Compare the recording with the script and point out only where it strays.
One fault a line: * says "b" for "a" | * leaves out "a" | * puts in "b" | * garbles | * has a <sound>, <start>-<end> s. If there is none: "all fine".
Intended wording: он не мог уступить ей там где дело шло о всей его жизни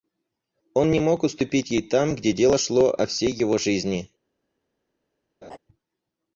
* has a laugh, 5.4-5.6 s